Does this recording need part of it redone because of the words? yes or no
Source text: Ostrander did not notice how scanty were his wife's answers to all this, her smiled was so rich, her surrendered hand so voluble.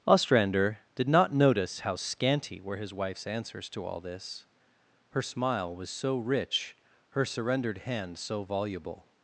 yes